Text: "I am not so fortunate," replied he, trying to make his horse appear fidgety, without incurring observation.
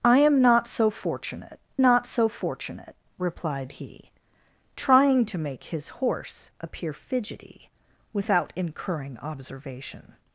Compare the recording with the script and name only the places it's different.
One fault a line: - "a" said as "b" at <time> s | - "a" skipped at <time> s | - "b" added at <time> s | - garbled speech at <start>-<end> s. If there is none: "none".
- "not so fortunate" added at 1.8 s